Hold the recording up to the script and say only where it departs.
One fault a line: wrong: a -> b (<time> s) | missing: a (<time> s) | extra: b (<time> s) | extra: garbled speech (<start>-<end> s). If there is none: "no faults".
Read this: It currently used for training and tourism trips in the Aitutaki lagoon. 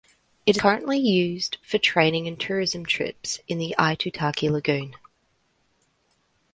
no faults